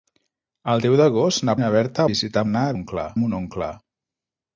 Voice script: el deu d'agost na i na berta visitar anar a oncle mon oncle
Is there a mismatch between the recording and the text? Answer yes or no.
no